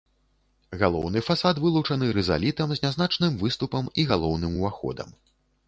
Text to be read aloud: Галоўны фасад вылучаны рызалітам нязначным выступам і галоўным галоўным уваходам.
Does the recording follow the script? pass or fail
fail